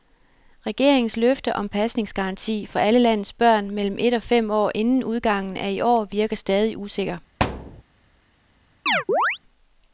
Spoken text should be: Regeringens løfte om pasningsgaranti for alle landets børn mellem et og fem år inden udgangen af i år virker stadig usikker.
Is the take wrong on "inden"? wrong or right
right